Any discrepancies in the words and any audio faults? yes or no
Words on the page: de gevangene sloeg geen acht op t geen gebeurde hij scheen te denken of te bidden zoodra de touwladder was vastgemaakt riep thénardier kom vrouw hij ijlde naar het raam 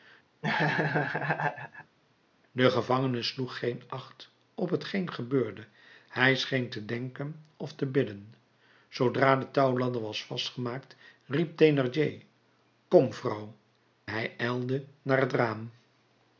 yes